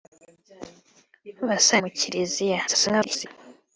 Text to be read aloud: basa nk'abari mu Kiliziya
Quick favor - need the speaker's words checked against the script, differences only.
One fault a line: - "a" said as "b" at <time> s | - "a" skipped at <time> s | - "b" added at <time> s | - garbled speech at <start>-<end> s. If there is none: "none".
- "nk'abari" skipped at 1.8 s
- garbled speech at 2.7-3.3 s